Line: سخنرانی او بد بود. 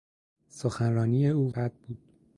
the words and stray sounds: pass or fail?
pass